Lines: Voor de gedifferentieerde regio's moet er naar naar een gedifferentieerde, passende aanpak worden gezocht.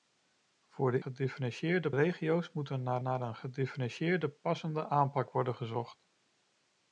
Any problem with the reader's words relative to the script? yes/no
no